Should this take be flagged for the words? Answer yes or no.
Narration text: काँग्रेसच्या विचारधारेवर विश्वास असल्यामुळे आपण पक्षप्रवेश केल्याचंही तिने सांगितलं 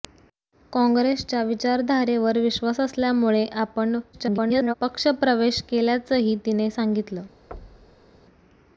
yes